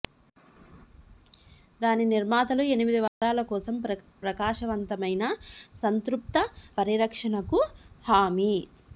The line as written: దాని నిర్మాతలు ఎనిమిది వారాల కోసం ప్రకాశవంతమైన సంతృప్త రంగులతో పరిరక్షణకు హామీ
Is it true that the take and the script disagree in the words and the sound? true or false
true